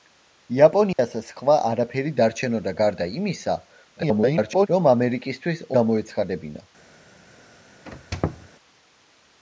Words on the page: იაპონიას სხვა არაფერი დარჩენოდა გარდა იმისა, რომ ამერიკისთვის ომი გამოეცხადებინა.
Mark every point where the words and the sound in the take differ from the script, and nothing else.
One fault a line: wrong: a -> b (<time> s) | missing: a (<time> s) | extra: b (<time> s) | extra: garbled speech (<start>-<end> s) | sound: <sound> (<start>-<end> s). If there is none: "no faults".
sound: dropout (0.9-1.0 s)
extra: garbled speech (4.0-4.7 s)
missing: ომი (5.7 s)
sound: squeak (7.9-8.5 s)